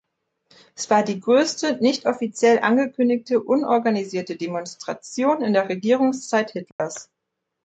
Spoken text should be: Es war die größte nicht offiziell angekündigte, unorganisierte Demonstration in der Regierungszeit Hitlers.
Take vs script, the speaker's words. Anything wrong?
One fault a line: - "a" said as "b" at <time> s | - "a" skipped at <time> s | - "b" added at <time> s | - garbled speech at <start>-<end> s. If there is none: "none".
none